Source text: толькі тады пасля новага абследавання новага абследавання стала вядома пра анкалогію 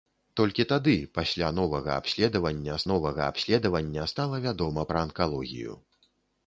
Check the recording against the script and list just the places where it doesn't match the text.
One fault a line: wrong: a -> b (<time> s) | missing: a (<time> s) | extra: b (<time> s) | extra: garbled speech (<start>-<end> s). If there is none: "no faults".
no faults